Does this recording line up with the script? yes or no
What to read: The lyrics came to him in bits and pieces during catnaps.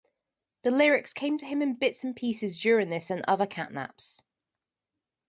no